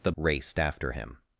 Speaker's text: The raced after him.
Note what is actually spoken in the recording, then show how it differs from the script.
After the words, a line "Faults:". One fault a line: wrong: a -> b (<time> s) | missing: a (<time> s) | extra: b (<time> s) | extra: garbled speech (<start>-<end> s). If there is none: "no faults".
The raced after him.
Faults:
no faults